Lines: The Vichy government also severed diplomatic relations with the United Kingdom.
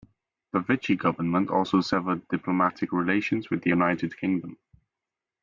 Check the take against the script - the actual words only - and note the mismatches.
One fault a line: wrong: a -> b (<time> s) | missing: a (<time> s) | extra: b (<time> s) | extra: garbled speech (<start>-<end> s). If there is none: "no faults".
no faults